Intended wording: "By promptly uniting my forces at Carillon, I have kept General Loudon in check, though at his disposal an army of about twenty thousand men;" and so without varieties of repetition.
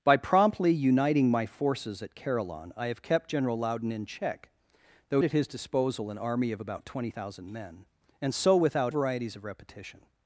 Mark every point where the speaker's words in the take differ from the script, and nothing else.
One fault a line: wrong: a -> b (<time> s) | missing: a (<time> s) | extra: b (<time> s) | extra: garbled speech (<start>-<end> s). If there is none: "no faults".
no faults